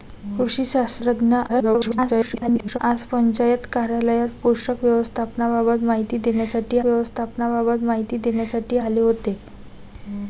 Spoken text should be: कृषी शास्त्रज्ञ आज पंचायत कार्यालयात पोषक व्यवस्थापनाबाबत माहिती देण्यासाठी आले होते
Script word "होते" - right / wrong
right